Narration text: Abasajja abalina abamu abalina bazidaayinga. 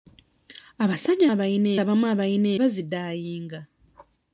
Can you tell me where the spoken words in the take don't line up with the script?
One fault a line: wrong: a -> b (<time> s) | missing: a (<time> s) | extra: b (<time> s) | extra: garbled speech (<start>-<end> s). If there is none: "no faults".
no faults